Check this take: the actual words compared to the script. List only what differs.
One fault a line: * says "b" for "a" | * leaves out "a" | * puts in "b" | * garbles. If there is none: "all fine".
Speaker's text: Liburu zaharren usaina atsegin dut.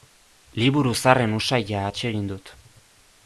all fine